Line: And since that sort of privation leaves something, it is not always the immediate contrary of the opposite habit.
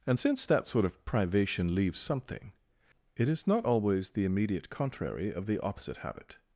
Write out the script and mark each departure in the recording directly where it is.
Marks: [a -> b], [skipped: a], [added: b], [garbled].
And since that sort of privation leaves something, it is not always the immediate contrary of the opposite habit.